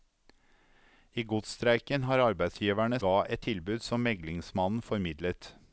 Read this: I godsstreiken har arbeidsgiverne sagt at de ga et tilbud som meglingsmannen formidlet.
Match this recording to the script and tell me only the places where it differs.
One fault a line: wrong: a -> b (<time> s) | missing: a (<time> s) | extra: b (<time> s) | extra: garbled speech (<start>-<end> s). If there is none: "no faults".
missing: sagt at de (3.0 s)